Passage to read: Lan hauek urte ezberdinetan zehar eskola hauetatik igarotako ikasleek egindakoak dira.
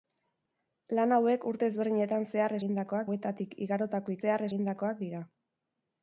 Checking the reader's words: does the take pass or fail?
fail